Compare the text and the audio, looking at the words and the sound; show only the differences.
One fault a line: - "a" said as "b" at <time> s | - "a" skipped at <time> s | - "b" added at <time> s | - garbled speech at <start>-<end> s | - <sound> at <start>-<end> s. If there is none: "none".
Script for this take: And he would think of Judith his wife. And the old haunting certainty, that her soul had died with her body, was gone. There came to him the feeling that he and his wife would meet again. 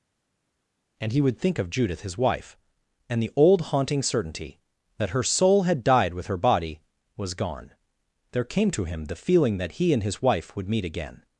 none